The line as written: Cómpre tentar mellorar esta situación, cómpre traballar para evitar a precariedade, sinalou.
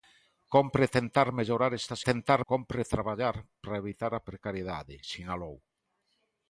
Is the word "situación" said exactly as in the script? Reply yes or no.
no